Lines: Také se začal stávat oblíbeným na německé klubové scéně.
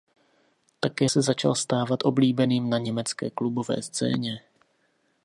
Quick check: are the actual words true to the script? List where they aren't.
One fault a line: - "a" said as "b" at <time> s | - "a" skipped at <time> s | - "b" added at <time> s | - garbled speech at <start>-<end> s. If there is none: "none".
none